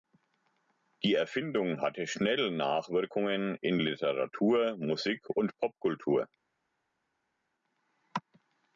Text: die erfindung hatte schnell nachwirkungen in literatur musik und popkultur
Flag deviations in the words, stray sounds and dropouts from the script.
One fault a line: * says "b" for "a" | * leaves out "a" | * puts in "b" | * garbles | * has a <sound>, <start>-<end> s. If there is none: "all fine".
all fine